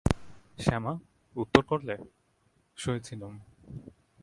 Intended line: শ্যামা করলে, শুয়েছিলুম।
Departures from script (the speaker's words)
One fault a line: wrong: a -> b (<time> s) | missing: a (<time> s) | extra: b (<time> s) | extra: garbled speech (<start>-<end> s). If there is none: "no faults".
extra: উত্তর (1.4 s)